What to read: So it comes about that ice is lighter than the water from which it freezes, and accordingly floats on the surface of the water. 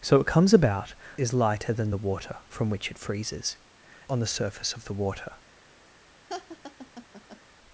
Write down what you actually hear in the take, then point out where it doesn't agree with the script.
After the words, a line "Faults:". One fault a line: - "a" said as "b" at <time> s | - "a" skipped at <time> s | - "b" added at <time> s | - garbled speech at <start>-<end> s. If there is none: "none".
So it comes about is lighter than the water from which it freezes, on the surface of the water.
Faults:
- "that ice" skipped at 0.9 s
- "and accordingly floats" skipped at 3.6 s